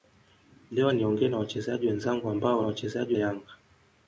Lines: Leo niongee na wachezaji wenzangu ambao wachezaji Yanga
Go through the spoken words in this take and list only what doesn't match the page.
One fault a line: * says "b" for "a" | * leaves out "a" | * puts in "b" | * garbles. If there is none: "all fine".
all fine